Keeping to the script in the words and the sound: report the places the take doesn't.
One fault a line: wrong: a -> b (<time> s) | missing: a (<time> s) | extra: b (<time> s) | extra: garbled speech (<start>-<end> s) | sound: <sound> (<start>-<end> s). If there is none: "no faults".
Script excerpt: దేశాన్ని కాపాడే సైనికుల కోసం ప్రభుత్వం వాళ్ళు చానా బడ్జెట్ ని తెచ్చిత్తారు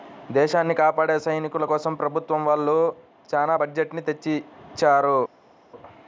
no faults